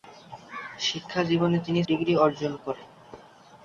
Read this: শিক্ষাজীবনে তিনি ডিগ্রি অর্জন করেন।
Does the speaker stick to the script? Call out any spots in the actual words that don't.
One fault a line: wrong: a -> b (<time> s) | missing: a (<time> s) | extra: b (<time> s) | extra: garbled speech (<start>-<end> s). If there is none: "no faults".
no faults